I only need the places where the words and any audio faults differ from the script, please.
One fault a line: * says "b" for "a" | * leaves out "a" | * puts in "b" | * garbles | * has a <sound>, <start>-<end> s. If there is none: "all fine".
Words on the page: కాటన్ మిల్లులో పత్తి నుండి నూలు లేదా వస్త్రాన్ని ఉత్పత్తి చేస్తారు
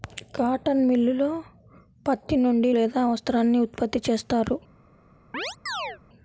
* leaves out "నూలు"
* has a chirp, 5.3-6.0 s